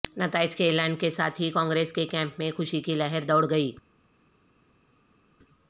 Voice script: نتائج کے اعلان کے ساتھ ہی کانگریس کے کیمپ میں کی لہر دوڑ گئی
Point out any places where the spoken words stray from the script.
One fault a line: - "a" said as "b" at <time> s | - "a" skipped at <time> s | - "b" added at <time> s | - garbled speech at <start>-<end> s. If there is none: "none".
- "خوشی" added at 2.5 s